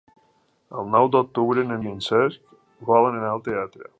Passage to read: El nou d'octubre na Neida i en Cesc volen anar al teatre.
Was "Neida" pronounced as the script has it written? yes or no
no